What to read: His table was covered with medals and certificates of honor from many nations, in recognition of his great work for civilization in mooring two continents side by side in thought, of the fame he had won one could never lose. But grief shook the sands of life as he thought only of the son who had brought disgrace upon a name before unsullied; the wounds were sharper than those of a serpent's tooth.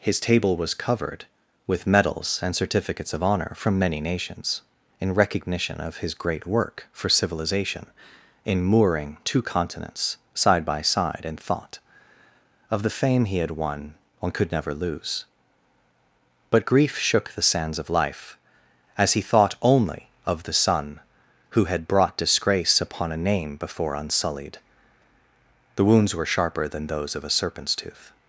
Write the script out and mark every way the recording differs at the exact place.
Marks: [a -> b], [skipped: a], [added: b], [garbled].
His table was covered with medals and certificates of honor from many nations, in recognition of his great work for civilization in mooring two continents side by side in thought, of the fame he had won one could never lose. But grief shook the sands of life as he thought only of the son who had brought disgrace upon a name before unsullied; the wounds were sharper than those of a serpent's tooth.